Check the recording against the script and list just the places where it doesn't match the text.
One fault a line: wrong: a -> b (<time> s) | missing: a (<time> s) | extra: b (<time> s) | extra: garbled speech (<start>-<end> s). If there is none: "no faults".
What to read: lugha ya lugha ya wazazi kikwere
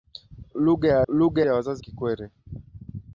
no faults